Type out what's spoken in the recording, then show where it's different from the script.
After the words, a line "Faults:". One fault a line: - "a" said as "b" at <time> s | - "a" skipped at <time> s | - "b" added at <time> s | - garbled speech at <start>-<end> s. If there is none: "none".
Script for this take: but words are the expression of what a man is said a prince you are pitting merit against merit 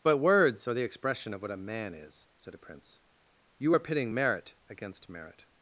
but words are the expression of what a man is said a prince you are pitting merit against merit
Faults:
none